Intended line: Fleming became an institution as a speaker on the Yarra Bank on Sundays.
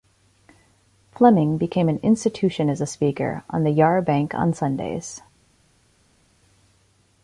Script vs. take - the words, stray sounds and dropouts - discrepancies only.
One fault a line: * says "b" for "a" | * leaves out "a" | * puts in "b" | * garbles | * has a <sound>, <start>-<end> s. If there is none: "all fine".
all fine